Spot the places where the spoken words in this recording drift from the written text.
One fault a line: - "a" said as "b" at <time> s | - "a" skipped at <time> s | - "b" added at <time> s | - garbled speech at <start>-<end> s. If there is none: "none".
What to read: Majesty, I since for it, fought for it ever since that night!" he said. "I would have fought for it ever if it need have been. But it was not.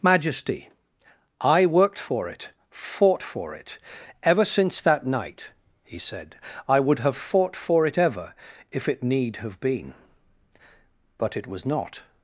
- "since" said as "worked" at 1.7 s